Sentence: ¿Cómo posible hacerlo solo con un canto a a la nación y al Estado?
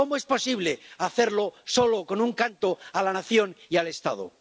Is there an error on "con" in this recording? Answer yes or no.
no